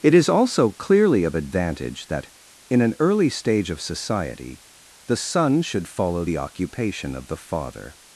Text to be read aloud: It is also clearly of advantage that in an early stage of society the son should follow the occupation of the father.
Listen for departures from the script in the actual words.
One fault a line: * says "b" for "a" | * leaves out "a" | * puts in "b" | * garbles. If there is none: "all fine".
all fine